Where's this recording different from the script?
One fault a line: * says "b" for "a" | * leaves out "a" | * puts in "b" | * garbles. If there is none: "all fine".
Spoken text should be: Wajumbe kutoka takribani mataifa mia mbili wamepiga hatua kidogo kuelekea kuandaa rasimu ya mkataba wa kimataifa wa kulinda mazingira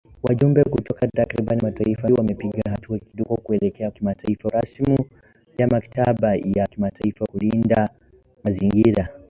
* leaves out "mia mbili"
* says "kimataifa" for "kuandaa"
* leaves out "wa"